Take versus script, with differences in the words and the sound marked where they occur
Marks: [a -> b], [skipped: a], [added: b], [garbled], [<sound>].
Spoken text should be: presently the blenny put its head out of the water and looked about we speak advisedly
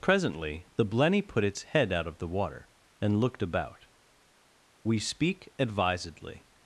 presently the blenny put its head out of the water and looked about we speak advisedly